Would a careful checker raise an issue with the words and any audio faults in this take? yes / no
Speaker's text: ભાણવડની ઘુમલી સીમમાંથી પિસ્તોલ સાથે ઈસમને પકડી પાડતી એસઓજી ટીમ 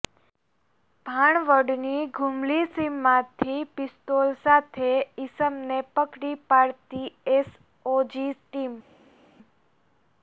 no